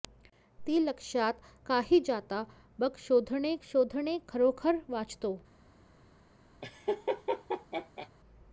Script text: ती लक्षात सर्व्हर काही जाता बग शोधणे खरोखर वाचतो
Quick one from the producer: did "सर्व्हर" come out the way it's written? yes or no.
no